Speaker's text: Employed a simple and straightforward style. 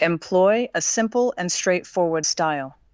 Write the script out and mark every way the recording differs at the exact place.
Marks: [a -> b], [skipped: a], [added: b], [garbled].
[Employed -> Employ] a simple and straightforward style.